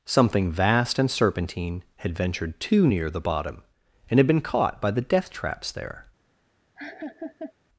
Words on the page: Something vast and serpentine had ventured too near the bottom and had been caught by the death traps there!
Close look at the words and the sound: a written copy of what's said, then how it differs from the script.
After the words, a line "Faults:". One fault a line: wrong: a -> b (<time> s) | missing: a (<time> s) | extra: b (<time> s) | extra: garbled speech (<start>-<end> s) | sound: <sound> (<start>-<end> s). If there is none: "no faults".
Something vast and serpentine had ventured too near the bottom and had been caught by the death traps there!
Faults:
sound: laugh (6.8-7.5 s)